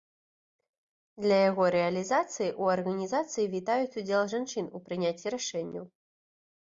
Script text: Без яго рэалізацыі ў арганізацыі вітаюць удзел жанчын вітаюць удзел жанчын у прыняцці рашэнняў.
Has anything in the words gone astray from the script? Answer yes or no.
yes